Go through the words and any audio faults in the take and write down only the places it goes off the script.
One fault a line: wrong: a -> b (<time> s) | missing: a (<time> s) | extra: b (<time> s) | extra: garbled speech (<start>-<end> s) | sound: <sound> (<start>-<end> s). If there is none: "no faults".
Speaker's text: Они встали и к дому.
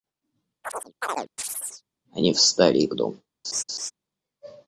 sound: chirp (0.6-1.8 s)
sound: laugh (3.4-3.9 s)